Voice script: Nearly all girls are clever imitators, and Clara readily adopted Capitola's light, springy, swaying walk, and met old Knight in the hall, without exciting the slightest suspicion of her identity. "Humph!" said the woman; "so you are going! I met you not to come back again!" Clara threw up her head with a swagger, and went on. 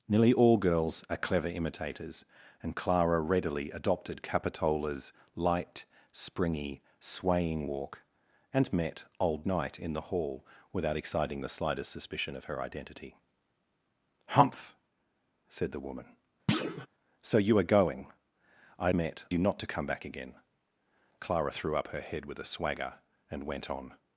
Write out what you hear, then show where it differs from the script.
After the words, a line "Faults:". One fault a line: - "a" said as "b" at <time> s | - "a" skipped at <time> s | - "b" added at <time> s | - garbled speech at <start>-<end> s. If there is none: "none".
Nearly all girls are clever imitators, and Clara readily adopted Capitola's light, springy, swaying walk, and met old Knight in the hall, without exciting the slightest suspicion of her identity. "Humph!" said the woman; "so you are going! I met you not to come back again!" Clara threw up her head with a swagger, and went on.
Faults:
none